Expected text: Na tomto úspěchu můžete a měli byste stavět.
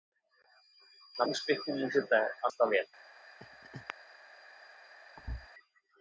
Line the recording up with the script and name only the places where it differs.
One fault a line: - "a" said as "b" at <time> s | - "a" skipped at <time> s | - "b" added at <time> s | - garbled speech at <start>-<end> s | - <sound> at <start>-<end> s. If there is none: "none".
- "tomto" skipped at 1.2 s
- "měli byste" skipped at 2.5 s
- laugh at 3.4-3.9 s
- thud at 5.2-5.5 s